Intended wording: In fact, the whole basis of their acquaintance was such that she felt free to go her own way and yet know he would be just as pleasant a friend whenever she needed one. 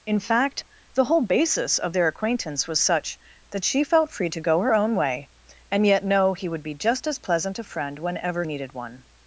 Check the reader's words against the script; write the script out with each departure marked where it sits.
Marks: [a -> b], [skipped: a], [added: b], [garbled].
In fact, the whole basis of their acquaintance was such that she felt free to go her own way and yet know he would be just as pleasant a friend whenever [skipped: she] needed one.